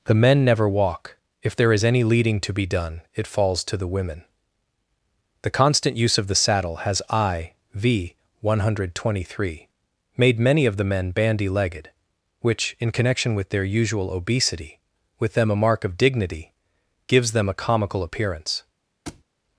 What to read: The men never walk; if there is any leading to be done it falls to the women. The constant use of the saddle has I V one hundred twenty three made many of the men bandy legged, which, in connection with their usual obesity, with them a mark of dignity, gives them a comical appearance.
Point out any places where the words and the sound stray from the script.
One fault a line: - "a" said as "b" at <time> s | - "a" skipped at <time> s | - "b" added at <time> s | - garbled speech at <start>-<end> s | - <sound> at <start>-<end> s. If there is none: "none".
- thud at 19.1-19.2 s